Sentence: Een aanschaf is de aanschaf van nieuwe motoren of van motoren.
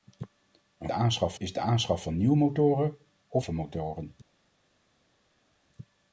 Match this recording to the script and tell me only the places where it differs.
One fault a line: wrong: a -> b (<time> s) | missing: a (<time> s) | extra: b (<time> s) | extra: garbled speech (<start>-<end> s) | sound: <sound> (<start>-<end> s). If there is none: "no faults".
no faults